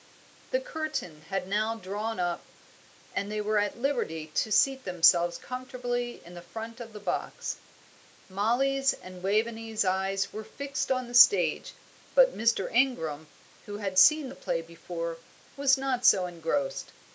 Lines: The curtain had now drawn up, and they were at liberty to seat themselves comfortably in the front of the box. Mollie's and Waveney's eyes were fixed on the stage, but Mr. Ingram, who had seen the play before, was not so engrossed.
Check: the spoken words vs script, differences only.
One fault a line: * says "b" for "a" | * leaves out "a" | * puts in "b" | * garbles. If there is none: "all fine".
all fine